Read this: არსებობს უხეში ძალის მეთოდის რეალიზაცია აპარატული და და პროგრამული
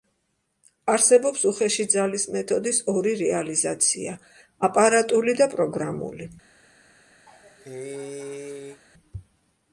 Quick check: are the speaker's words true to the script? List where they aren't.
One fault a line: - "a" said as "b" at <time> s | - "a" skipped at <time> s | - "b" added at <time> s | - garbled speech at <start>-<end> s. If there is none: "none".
- "ორი" added at 2.9 s
- "და" skipped at 5.5 s